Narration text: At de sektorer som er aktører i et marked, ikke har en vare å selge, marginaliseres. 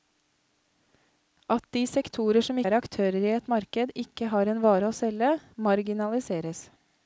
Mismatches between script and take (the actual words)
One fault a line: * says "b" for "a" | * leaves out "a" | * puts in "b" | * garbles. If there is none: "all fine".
all fine